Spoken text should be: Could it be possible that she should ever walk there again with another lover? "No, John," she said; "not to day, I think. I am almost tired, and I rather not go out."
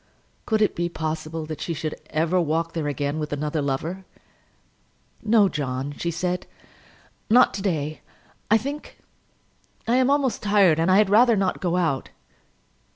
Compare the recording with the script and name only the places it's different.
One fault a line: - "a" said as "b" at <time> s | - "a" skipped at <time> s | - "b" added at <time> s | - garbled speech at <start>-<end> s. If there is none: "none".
- "had" added at 11.0 s